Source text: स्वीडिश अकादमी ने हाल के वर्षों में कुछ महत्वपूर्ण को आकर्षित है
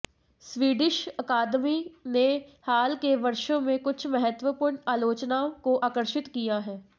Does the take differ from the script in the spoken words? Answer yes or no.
yes